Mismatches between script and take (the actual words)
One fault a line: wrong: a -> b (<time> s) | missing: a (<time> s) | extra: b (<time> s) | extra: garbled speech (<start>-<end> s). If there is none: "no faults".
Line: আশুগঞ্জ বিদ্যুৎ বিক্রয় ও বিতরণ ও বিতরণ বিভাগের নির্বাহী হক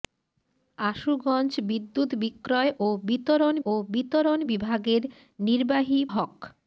no faults